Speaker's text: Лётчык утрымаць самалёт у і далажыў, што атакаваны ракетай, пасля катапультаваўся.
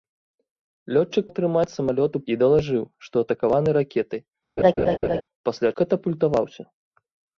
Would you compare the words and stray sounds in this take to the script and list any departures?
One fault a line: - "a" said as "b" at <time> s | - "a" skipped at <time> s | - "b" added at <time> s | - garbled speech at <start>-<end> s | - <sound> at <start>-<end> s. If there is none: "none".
- laugh at 4.6-5.2 s